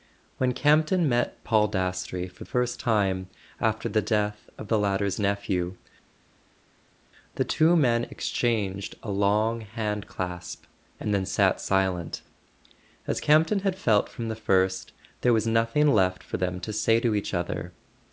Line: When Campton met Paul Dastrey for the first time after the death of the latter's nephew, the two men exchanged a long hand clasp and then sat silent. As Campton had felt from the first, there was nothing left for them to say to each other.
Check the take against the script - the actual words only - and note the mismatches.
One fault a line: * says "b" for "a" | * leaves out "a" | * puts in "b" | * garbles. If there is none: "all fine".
* leaves out "the"